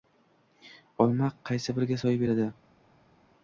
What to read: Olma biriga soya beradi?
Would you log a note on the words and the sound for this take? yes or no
yes